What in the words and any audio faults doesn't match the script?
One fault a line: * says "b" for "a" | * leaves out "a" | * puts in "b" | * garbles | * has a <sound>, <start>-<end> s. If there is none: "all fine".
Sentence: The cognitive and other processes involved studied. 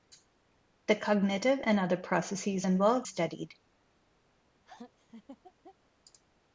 * has a laugh, 4.7-5.8 s